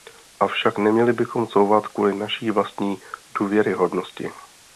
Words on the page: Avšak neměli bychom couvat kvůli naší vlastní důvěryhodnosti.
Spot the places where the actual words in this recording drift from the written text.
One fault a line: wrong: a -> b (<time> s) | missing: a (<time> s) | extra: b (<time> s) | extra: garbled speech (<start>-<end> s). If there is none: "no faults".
no faults